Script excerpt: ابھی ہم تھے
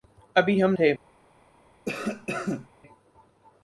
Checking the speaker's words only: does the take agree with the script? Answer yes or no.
yes